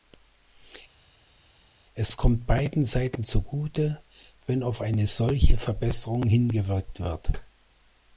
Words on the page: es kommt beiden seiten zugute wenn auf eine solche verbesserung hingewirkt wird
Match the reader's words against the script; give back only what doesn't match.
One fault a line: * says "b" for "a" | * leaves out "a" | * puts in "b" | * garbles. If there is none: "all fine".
all fine